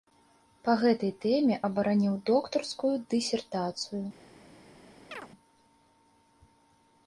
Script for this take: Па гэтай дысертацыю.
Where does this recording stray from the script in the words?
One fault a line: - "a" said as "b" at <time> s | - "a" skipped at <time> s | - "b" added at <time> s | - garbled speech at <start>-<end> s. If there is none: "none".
- "тэме абараніў доктарскую" added at 1.2 s